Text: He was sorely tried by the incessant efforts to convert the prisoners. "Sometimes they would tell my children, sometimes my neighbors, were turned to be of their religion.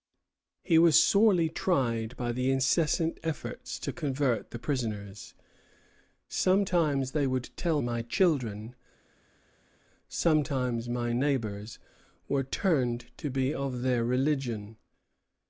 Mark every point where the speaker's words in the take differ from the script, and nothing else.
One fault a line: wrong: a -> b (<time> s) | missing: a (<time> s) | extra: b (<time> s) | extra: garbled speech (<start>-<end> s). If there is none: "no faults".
no faults